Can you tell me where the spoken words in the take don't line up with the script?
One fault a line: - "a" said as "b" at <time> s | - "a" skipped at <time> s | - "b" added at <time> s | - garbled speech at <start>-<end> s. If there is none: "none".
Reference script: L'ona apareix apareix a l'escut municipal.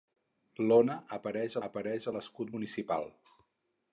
none